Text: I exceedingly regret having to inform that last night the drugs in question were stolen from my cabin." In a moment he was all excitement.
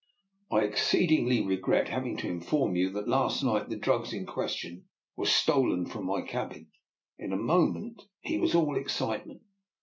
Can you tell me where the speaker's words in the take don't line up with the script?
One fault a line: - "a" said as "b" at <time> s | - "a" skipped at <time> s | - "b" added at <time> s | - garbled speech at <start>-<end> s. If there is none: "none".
- "you" added at 2.8 s